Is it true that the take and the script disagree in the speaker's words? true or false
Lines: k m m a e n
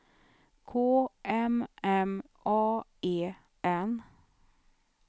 false